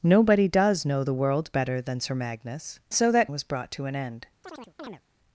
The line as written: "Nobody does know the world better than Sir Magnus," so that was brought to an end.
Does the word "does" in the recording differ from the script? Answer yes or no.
no